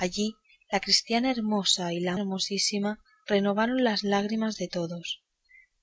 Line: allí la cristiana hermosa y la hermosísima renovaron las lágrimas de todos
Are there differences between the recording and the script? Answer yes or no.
no